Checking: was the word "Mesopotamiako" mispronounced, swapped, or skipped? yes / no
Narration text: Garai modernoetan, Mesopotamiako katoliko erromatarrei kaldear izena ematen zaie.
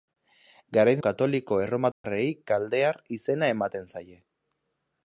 yes